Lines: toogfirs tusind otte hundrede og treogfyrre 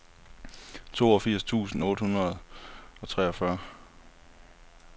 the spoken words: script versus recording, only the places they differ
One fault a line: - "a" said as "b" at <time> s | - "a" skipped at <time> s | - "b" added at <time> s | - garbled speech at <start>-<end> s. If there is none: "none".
none